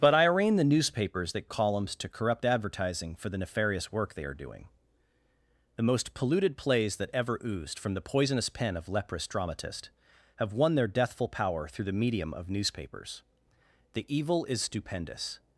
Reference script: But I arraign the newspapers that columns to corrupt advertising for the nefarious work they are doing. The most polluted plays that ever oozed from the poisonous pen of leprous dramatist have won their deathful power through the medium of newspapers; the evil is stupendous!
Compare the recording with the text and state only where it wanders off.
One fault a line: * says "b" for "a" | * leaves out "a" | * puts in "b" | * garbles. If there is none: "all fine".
all fine